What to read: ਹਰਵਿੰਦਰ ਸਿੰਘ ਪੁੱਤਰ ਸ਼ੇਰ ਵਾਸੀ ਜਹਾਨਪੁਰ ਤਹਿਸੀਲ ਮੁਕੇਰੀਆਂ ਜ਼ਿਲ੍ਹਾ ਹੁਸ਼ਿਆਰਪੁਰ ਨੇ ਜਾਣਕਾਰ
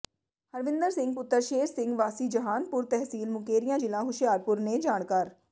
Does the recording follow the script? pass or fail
fail